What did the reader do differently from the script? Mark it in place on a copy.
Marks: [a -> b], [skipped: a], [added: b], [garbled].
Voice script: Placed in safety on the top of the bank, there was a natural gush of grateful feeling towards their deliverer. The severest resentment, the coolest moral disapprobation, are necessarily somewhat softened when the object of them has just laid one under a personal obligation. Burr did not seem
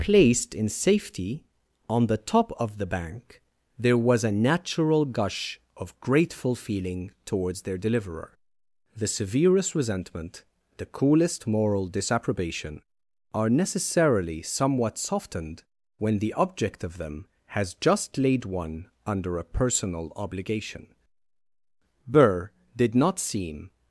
Placed in safety on the top of the bank, there was a natural gush of grateful feeling towards their deliverer. The severest resentment, the coolest moral disapprobation, are necessarily somewhat softened when the object of them has just laid one under a personal obligation. Burr did not seem